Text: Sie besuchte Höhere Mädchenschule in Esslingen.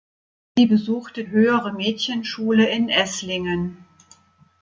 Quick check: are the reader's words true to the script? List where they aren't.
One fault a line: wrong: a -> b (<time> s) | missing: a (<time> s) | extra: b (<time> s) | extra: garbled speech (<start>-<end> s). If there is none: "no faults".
no faults